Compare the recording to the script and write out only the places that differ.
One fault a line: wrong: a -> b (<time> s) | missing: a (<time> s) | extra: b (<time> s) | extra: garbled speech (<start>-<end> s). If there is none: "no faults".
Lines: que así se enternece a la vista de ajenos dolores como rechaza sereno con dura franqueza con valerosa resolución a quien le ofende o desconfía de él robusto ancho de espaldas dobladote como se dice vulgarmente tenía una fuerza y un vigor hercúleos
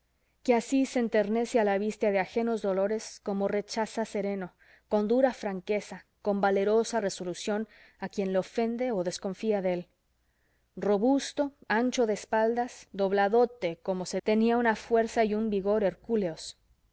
missing: dice vulgarmente (14.2 s)